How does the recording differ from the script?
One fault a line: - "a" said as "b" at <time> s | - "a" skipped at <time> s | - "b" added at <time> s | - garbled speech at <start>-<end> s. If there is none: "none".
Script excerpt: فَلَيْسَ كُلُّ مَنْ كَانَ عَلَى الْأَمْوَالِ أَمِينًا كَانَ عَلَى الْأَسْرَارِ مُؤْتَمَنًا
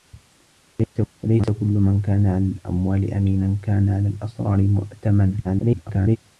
- garbled speech at 5.4-6.2 s